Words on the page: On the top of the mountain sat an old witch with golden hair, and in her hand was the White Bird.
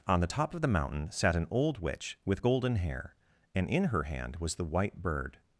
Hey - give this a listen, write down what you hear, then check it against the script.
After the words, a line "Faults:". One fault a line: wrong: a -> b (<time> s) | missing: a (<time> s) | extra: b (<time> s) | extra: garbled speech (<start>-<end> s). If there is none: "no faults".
On the top of the mountain sat an old witch with golden hair, and in her hand was the White Bird.
Faults:
no faults